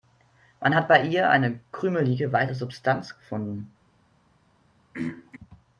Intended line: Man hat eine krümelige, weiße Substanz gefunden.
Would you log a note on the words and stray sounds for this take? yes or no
yes